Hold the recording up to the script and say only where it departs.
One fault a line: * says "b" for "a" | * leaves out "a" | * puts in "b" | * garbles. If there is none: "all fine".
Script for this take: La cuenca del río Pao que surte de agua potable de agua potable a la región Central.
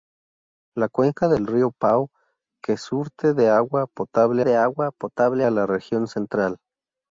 all fine